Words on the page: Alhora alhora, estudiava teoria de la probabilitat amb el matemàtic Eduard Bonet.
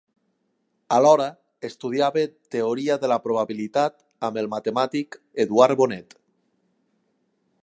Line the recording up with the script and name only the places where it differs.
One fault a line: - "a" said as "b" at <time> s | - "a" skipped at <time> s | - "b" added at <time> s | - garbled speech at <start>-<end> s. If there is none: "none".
- "alhora" skipped at 1.3 s